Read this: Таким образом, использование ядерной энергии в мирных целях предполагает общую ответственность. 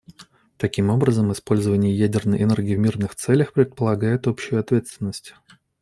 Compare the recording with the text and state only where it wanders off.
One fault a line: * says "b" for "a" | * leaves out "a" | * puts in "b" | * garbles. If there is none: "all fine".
all fine